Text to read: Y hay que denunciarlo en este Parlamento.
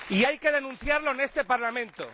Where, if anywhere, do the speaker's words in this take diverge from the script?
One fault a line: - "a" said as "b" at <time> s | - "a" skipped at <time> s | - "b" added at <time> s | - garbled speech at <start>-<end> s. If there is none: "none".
none